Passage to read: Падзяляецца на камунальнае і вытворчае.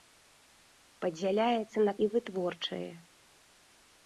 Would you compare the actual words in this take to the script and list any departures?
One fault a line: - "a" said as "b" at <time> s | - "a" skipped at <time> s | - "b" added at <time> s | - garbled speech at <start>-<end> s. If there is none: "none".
- "камунальнае" skipped at 1.9 s